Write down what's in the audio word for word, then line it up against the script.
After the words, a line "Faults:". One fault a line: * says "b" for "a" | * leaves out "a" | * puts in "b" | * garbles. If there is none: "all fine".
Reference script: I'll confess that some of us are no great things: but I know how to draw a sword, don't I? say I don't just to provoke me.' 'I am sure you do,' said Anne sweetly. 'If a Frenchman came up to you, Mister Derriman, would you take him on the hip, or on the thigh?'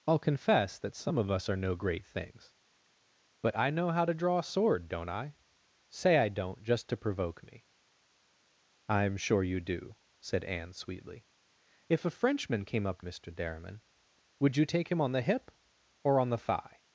I'll confess that some of us are no great things: but I know how to draw a sword, don't I? say I don't just to provoke me.' 'I am sure you do,' said Anne sweetly. 'If a Frenchman came up Mister Derriman, would you take him on the hip, or on the thigh?'
Faults:
* leaves out "to you"